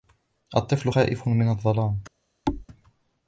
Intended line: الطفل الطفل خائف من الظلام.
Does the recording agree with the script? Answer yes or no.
no